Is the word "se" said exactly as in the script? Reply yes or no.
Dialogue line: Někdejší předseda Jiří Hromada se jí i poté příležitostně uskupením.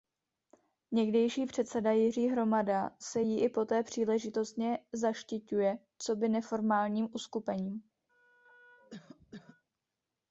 yes